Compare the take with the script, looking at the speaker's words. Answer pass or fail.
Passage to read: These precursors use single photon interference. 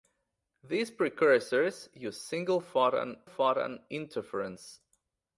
fail